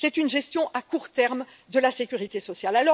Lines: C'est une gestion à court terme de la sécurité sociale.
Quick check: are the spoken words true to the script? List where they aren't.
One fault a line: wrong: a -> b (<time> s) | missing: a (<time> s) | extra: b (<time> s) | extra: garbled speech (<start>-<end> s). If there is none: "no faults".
no faults